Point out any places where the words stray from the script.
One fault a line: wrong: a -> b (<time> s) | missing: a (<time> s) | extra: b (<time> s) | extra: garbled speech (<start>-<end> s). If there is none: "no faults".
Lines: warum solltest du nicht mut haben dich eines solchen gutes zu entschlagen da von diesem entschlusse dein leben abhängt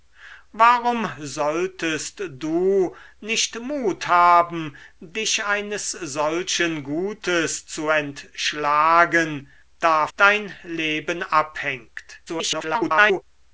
missing: von diesem entschlusse (10.1 s)
extra: garbled speech (12.3-13.2 s)